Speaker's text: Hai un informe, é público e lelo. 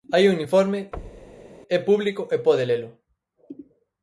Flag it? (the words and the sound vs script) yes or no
yes